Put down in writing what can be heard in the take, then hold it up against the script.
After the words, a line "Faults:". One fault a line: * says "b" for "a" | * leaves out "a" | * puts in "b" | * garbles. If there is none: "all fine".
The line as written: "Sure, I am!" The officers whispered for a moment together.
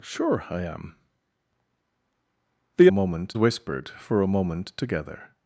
"Sure, I am!" The moment whispered for a moment together.
Faults:
* says "moment" for "officers"